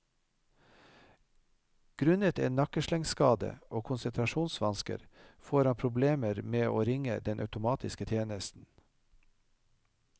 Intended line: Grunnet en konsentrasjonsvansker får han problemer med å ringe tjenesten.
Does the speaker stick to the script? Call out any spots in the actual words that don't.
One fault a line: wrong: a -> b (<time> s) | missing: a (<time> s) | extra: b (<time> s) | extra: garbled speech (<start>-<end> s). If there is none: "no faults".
extra: nakkeslengskade og (2.6 s)
extra: den automatiske (7.3 s)